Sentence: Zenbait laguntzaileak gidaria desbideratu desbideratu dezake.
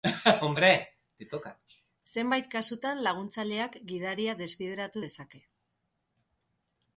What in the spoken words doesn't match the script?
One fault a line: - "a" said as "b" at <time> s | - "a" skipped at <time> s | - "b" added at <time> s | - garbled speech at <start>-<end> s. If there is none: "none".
- "kasutan" added at 2.5 s
- "desbideratu" skipped at 5.0 s